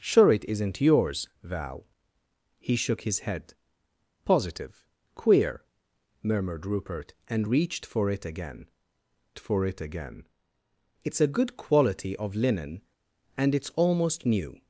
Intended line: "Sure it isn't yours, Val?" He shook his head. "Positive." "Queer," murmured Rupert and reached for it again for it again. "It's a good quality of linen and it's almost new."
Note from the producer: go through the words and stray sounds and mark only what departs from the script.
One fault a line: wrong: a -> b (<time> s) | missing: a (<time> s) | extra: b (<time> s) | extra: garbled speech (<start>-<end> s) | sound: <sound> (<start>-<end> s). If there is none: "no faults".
no faults